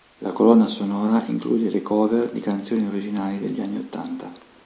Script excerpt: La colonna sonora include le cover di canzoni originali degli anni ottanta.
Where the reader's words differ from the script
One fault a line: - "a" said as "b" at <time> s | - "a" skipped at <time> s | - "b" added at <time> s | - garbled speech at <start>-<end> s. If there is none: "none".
none